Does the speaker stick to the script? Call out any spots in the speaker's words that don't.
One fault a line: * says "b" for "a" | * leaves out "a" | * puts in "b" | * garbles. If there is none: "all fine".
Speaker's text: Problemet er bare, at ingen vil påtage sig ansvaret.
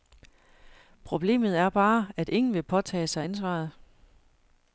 all fine